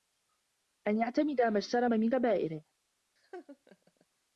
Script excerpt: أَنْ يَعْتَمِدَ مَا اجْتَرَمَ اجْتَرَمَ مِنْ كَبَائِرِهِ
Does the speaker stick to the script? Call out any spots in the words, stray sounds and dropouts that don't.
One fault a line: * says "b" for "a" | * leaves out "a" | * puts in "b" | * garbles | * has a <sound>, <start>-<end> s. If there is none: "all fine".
* leaves out "اجْتَرَمَ"
* has a laugh, 3.2-4.1 s